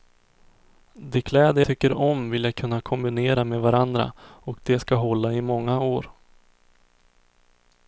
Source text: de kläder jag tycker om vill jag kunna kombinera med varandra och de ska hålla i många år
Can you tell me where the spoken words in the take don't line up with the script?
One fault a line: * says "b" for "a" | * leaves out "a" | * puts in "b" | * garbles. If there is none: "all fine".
* leaves out "jag"